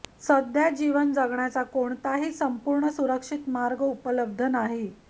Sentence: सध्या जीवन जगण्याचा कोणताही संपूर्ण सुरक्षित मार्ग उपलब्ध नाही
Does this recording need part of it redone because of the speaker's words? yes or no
no